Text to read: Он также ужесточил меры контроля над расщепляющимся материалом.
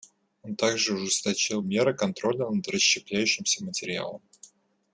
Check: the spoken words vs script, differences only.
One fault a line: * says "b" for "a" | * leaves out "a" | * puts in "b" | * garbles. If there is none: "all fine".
all fine